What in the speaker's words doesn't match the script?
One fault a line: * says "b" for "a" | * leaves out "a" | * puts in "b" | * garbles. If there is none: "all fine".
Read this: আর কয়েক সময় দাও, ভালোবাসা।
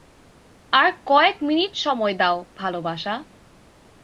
* puts in "মিনিট"